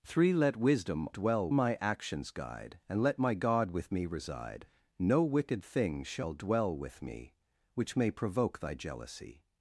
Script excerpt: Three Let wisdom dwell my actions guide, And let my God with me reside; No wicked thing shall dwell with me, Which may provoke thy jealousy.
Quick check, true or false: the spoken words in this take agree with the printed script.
true